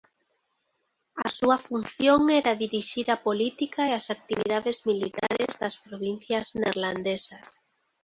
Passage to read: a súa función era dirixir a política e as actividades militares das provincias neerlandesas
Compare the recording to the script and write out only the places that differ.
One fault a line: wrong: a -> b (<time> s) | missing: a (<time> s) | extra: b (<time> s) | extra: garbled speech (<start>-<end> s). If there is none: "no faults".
no faults